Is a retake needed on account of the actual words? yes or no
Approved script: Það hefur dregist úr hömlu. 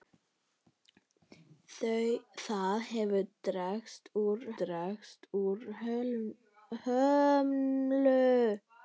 yes